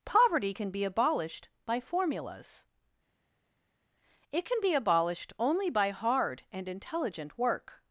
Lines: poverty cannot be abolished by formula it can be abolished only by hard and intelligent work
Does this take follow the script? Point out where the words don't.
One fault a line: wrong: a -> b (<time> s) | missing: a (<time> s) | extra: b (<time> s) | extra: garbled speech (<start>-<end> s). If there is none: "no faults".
wrong: cannot -> can (0.5 s)
wrong: formula -> formulas (1.8 s)